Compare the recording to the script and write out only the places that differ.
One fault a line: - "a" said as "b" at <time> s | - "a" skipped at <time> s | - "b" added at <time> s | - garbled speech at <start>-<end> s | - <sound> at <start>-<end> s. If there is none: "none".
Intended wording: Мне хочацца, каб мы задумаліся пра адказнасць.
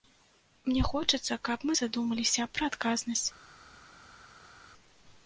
none